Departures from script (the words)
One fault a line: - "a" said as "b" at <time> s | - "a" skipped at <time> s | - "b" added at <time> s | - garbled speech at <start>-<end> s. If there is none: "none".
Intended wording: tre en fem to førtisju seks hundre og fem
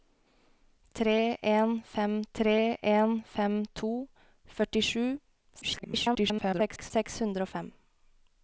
- "tre en fem" added at 2.4 s
- garbled speech at 5.6-6.9 s